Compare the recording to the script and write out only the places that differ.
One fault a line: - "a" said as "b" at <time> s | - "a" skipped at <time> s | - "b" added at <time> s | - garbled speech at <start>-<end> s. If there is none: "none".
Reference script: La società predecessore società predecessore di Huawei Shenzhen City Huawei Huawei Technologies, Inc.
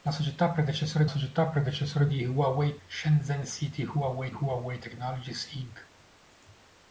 none